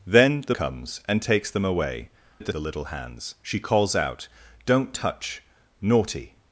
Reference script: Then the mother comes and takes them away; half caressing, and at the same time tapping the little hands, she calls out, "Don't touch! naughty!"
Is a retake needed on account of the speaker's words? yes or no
yes